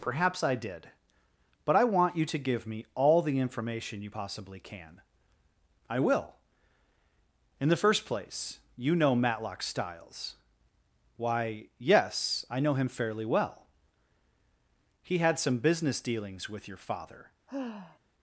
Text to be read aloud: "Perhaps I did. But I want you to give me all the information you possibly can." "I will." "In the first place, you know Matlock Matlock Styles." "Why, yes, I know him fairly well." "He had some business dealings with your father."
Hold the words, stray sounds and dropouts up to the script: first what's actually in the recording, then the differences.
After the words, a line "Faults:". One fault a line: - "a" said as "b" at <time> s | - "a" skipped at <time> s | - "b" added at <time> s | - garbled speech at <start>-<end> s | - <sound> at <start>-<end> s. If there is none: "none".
"Perhaps I did. But I want you to give me all the information you possibly can." "I will." "In the first place, you know Matlock Styles." "Why, yes, I know him fairly well." "He had some business dealings with your father."
Faults:
- "Matlock" skipped at 9.6 s
- sigh at 17.5-18.0 s